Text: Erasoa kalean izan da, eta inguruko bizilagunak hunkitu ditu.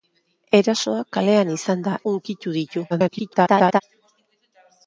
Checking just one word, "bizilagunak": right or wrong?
wrong